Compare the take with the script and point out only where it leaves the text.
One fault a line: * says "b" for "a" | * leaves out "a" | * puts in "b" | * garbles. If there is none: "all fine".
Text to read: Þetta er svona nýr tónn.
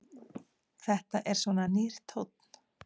all fine